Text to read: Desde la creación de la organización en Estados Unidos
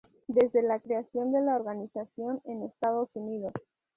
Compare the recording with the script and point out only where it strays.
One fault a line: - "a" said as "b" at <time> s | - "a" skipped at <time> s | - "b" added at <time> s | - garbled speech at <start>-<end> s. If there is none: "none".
none